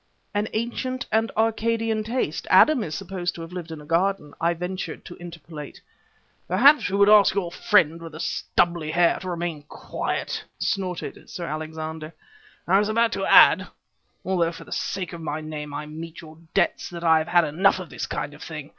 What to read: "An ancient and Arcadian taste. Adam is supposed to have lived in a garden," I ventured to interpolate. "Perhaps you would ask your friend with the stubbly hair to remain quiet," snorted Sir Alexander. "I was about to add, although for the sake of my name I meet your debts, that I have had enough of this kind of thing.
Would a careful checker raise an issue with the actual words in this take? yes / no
no